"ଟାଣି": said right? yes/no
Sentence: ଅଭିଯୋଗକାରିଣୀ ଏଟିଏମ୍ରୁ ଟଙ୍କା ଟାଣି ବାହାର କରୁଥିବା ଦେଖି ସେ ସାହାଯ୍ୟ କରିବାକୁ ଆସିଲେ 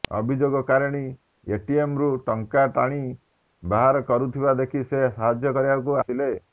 yes